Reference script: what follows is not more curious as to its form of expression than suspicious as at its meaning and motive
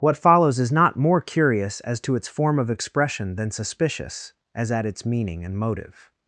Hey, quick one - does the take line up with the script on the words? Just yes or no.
yes